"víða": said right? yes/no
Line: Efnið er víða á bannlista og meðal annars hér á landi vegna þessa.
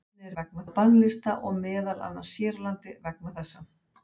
no